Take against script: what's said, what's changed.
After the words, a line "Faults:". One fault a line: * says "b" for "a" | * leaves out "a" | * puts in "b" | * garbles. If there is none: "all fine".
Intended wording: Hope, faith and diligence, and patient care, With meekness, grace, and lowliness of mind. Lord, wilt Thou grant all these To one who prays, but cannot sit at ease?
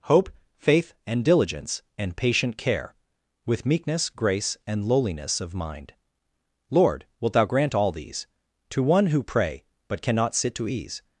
Hope, faith and diligence, and patient care, With meekness, grace, and lowliness of mind. Lord, wilt Thou grant all these To one who pray, but cannot sit to ease?
Faults:
* says "pray" for "prays"
* says "to" for "at"